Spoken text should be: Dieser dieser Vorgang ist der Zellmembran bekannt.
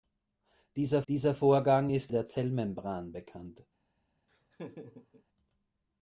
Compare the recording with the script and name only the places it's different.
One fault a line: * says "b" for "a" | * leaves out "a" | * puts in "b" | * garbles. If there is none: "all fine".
all fine